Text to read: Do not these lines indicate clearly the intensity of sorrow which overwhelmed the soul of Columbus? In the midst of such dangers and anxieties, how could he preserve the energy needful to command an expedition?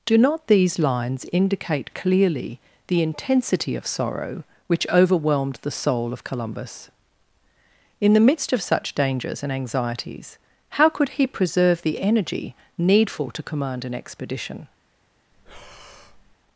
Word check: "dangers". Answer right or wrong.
right